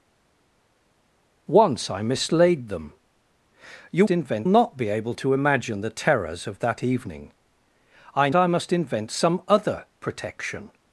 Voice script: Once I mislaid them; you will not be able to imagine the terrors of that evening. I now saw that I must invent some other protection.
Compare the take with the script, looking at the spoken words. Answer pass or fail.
fail